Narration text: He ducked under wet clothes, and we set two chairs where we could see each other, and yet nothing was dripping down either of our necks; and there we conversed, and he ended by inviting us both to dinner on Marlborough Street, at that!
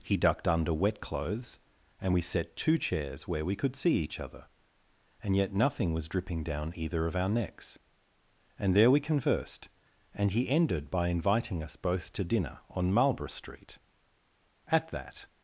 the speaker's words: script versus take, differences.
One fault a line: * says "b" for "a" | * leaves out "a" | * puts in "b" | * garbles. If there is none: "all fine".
all fine